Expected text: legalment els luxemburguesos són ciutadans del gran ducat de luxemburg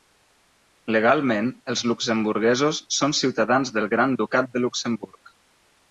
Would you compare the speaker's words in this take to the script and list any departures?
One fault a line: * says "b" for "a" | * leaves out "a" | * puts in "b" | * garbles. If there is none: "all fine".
all fine